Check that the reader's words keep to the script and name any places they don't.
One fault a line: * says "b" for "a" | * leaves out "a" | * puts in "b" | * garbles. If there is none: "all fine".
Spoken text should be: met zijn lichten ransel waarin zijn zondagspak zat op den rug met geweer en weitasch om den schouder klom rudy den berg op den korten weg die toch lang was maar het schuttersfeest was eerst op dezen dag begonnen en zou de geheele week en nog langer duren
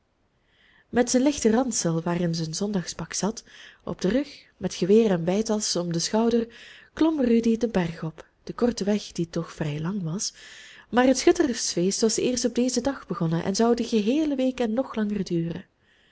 * puts in "vrij"